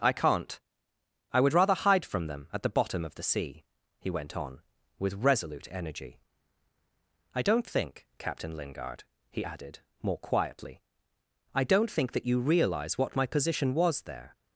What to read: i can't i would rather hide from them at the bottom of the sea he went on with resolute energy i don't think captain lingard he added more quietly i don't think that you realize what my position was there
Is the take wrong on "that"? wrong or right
right